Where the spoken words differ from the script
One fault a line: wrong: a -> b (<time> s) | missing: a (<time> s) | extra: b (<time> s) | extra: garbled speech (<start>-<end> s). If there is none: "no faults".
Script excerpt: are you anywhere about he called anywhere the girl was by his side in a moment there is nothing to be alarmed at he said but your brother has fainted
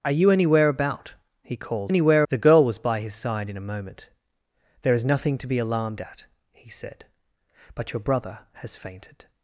no faults